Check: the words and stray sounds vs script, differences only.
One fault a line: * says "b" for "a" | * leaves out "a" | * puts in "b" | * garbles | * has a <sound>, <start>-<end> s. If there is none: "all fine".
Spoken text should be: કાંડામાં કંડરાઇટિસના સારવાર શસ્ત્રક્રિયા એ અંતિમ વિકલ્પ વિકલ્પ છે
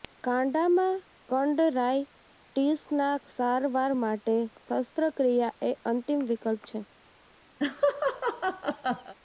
* puts in "માટે"
* leaves out "વિકલ્પ"
* has a laugh, 7.6-9.1 s